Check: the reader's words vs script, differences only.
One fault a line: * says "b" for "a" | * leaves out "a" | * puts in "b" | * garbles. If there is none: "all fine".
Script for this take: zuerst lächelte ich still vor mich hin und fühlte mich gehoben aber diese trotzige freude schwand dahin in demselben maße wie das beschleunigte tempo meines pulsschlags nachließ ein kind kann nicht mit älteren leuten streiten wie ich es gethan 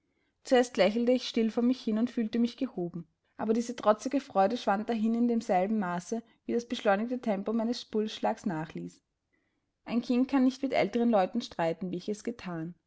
all fine